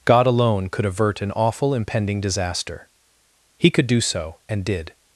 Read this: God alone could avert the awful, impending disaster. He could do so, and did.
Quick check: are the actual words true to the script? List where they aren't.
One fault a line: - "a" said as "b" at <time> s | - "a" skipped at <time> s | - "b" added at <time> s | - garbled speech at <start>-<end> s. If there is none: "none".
- "the" said as "an" at 1.2 s